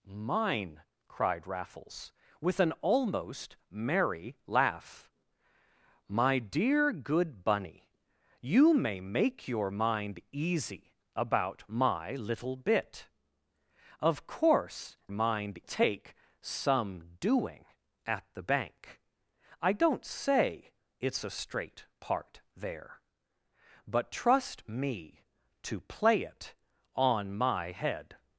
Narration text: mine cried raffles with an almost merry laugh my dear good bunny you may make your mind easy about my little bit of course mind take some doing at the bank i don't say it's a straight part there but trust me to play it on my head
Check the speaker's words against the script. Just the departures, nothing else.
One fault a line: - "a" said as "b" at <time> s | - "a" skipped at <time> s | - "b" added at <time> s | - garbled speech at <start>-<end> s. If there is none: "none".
none